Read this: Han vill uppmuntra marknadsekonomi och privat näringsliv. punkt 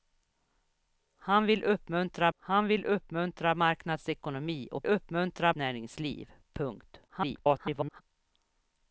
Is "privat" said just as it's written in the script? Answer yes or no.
no